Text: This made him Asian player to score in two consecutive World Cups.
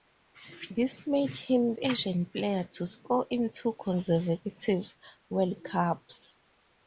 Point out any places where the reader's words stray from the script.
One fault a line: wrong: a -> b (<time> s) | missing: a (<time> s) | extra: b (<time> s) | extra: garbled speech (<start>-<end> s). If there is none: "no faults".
no faults